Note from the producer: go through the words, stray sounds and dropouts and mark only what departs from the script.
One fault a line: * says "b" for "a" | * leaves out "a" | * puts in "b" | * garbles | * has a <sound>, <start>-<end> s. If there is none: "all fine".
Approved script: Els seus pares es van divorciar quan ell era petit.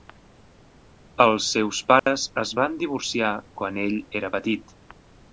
* has a dropout, 2.0-2.1 s